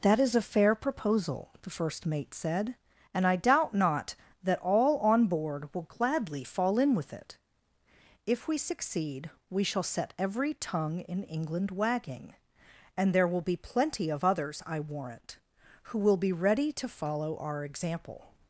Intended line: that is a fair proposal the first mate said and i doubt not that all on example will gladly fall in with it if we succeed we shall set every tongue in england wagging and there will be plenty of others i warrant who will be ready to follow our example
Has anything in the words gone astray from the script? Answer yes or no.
yes